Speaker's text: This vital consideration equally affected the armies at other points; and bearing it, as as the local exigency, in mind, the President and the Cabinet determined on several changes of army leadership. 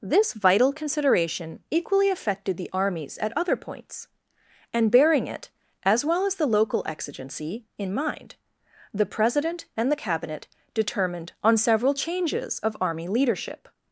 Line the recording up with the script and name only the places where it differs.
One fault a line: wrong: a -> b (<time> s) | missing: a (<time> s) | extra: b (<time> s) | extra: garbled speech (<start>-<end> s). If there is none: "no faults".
extra: well (6.0 s)